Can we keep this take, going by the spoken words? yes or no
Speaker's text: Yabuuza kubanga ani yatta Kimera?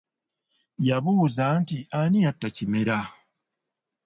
no